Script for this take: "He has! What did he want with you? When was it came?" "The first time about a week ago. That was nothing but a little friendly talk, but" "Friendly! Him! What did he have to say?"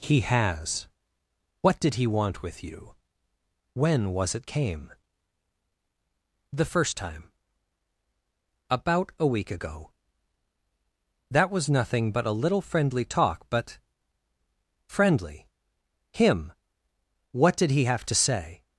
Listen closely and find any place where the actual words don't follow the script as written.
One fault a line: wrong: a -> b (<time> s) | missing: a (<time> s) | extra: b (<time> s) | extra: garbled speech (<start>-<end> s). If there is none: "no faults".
no faults